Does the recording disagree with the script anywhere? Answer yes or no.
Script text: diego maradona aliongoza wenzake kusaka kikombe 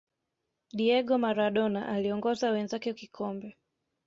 yes